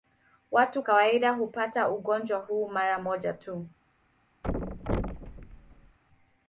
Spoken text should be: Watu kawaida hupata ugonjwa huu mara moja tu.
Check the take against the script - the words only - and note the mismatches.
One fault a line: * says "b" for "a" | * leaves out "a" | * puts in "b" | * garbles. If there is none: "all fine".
all fine